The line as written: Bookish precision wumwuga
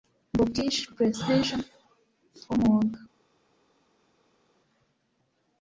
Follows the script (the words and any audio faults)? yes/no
yes